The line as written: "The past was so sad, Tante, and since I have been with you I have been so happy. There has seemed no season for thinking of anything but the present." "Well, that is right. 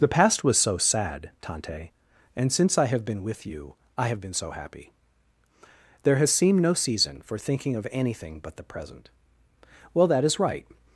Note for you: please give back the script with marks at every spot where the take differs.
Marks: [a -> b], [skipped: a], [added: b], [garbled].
"The past was so sad, Tante, and since I have been with you I have been so happy. There has seemed no season for thinking of anything but the present." "Well, that is right.